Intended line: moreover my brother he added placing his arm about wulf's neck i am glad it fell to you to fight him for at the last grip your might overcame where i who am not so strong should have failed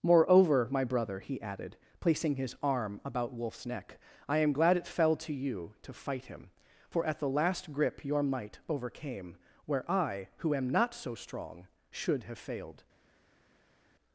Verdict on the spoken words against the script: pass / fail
pass